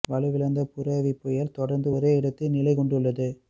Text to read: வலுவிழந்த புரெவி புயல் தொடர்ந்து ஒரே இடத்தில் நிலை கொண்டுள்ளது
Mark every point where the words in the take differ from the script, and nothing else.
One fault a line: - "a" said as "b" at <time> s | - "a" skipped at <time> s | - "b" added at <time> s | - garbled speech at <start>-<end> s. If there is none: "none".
none